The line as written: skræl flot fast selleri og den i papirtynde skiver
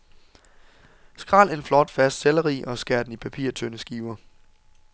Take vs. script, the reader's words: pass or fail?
fail